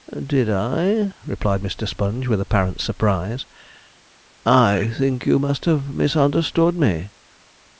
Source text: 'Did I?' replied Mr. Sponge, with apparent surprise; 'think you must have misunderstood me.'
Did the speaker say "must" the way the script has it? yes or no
yes